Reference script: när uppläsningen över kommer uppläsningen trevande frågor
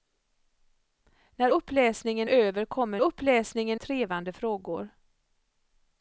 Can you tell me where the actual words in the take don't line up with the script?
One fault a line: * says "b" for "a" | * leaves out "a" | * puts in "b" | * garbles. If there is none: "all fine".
all fine